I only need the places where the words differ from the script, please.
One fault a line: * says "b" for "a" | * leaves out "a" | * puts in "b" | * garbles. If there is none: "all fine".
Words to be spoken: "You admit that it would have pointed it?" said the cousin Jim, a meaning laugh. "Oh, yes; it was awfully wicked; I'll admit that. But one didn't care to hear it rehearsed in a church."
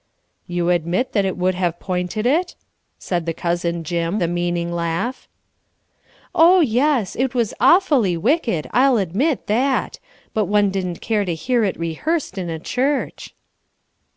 all fine